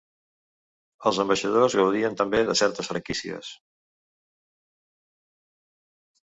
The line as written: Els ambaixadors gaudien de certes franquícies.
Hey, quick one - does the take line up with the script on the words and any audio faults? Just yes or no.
no